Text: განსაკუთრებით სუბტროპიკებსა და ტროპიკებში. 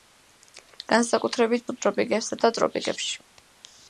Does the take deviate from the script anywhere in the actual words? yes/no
no